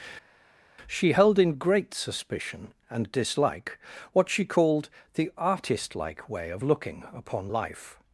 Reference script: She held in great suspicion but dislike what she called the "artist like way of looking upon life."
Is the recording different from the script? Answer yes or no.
yes